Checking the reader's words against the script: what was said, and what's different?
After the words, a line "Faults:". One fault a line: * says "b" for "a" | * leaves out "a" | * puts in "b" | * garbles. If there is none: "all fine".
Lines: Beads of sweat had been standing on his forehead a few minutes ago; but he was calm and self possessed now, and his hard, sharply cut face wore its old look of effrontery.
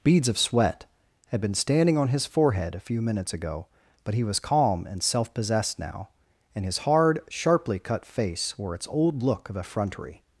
Beads of sweat had been standing on his forehead a few minutes ago; but he was calm and self possessed now, and his hard, sharply cut face wore its old look of effrontery.
Faults:
all fine